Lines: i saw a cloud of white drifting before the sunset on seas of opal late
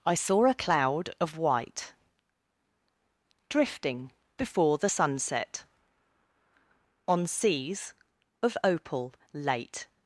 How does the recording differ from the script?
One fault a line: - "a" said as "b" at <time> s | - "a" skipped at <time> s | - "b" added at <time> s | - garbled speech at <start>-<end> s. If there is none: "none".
none